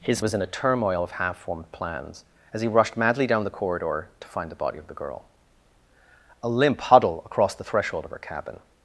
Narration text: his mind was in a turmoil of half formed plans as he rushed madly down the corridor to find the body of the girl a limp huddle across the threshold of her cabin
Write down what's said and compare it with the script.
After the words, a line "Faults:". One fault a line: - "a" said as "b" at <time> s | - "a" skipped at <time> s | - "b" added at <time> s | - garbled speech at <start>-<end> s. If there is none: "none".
his was in a turmoil of half formed plans as he rushed madly down the corridor to find the body of the girl a limp huddle across the threshold of her cabin
Faults:
- "mind" skipped at 0.2 s